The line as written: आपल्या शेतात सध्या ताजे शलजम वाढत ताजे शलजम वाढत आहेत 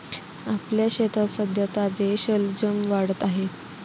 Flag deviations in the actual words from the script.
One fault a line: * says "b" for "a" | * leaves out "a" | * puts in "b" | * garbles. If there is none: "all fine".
* leaves out "ताजे शलजम वाढत"